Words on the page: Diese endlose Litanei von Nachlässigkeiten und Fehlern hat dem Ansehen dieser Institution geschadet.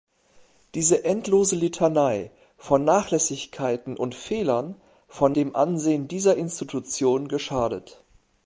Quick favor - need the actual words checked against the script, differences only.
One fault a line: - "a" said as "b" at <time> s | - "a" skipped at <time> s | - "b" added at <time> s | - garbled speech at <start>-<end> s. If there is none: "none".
- "hat" said as "von" at 5.1 s